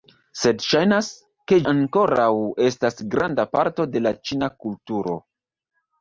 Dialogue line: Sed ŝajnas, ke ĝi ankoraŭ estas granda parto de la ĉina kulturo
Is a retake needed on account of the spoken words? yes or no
yes